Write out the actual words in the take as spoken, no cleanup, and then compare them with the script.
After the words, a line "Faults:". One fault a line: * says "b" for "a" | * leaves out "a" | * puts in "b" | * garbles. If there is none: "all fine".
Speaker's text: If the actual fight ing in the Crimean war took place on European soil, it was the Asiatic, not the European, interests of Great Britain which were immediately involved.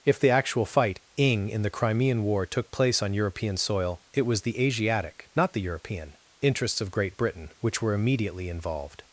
If the actual fight ing in the Crimean war took place on European soil, it was the Asiatic, not the European, interests of Great Britain which were immediately involved.
Faults:
all fine